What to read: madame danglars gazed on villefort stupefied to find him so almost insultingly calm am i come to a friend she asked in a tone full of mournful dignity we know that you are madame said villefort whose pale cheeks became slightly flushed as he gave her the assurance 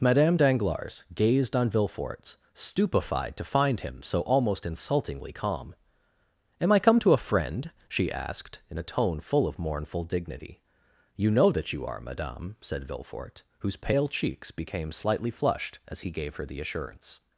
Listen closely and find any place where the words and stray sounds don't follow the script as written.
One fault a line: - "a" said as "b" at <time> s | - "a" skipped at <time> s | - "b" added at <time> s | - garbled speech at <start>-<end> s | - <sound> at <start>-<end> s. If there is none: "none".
- "we" said as "you" at 11.2 s